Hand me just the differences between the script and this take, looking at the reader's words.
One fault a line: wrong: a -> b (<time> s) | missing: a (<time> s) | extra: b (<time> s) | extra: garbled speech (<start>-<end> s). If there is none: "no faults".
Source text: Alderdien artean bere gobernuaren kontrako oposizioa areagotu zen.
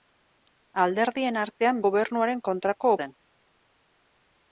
missing: bere (1.8 s)
missing: oposizioa areagotu (2.9 s)